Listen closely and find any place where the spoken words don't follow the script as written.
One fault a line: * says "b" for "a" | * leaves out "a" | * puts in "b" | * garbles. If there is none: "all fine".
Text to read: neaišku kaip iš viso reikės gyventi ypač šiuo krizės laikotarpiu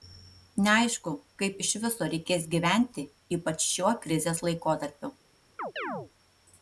all fine